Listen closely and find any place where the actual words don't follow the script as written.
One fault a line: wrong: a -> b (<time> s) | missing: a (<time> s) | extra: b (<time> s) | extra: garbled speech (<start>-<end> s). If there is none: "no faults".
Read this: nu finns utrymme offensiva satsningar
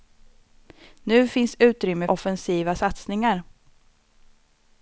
no faults